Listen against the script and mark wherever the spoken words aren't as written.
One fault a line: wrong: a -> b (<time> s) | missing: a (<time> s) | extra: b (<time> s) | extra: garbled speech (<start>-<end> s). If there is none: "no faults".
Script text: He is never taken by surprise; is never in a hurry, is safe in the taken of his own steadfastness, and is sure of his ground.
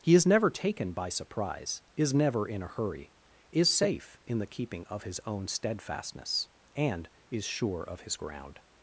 wrong: taken -> keeping (4.5 s)